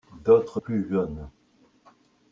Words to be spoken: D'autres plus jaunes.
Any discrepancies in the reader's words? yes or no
no